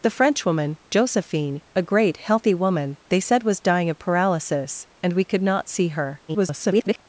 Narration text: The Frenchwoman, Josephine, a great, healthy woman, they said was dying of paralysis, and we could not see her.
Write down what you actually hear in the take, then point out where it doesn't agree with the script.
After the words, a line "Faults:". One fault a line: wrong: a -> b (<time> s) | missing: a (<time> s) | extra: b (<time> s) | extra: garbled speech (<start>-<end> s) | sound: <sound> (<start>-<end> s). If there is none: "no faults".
The Frenchwoman, Josephine, a great, healthy woman, they said was dying of paralysis, and we could not see her. [garbled]
Faults:
extra: garbled speech (6.3-7.0 s)